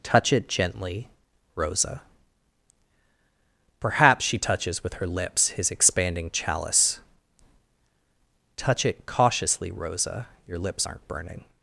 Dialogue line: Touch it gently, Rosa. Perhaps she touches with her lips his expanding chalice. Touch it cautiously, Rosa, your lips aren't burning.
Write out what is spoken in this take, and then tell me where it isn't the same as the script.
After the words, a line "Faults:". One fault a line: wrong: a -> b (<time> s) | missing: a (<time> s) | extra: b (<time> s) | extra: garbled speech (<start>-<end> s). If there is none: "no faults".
Touch it gently, Rosa. Perhaps she touches with her lips his expanding chalice. Touch it cautiously, Rosa, your lips aren't burning.
Faults:
no faults